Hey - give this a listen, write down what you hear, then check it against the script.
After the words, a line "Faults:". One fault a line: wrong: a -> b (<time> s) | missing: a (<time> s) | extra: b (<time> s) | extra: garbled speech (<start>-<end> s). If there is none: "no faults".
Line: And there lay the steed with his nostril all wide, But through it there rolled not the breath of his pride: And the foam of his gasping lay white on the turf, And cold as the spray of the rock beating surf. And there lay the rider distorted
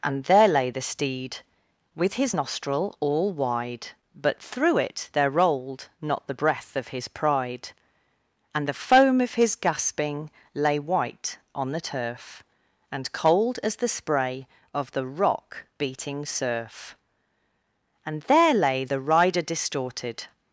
And there lay the steed with his nostril all wide, But through it there rolled not the breath of his pride: And the foam of his gasping lay white on the turf, And cold as the spray of the rock beating surf. And there lay the rider distorted
Faults:
no faults